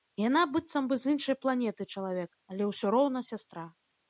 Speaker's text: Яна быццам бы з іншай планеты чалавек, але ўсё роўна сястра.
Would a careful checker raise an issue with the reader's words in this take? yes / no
no